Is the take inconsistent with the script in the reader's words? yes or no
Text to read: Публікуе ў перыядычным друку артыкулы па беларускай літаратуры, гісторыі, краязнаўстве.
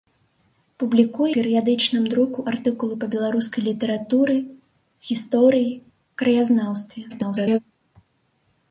yes